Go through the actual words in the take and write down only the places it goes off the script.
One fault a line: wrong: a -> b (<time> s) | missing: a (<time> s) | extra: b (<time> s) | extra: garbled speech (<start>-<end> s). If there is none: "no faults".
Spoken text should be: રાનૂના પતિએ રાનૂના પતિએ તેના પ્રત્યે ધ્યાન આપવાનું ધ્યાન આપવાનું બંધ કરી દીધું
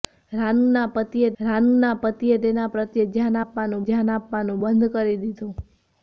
no faults